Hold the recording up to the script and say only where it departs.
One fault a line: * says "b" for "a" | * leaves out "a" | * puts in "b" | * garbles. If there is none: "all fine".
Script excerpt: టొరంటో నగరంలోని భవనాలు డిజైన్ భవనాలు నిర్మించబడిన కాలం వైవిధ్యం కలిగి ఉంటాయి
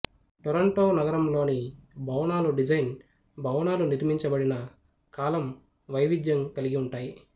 all fine